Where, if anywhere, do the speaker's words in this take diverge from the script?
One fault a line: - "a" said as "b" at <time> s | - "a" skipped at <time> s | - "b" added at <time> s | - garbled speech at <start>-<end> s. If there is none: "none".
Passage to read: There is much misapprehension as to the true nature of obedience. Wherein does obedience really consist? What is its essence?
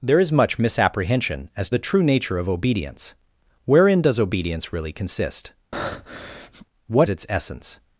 - "to" skipped at 1.7 s
- "is" skipped at 7.1 s